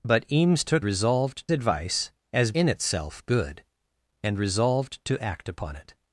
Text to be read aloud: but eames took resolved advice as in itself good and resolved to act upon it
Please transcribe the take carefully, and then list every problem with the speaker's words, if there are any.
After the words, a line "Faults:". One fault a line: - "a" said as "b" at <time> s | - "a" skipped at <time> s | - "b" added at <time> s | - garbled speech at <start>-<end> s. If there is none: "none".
but eames took resolved advice as in itself good and resolved to act upon it
Faults:
none